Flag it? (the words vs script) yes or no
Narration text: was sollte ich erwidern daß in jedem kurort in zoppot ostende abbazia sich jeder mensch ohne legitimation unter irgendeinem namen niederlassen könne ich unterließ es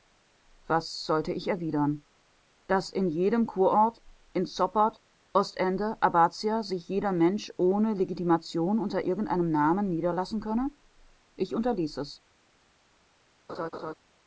no